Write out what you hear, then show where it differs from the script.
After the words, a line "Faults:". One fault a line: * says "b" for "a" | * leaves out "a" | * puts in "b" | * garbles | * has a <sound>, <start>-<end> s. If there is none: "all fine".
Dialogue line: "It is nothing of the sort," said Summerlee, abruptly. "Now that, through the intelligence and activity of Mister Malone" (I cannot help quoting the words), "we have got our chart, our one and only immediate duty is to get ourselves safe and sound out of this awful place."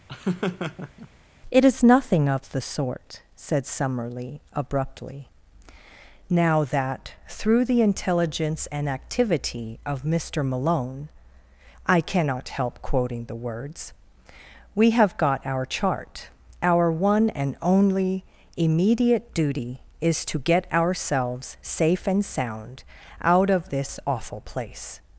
"It is nothing of the sort," said Summerlee, abruptly. "Now that, through the intelligence and activity of Mister Malone" (I cannot help quoting the words), "we have got our chart, our one and only immediate duty is to get ourselves safe and sound out of this awful place."
Faults:
* has a laugh, 0.1-1.1 s